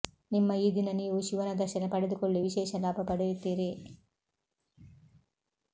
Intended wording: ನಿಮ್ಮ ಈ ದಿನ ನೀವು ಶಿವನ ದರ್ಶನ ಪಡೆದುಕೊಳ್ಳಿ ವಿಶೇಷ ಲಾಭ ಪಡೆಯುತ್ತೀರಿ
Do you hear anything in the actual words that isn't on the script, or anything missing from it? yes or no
no